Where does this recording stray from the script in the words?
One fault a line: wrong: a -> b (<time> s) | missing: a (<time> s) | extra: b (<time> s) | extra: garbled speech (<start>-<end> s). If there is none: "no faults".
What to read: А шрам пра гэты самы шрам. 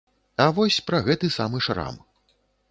wrong: шрам -> вось (0.6 s)